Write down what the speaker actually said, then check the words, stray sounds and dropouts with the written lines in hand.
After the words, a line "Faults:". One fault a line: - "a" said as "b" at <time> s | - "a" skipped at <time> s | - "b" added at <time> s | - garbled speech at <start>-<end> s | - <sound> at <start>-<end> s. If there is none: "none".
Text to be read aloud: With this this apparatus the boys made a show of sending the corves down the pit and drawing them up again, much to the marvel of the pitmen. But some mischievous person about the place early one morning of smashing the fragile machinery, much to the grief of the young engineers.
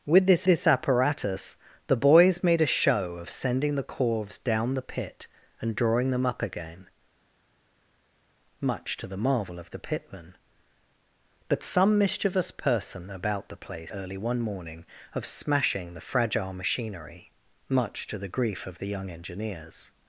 With this this apparatus the boys made a show of sending the corves down the pit and drawing them up again, much to the marvel of the pitmen. But some mischievous person about the place early one morning of smashing the fragile machinery, much to the grief of the young engineers.
Faults:
none